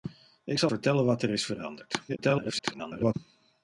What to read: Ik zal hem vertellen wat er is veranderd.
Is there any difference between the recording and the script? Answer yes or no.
yes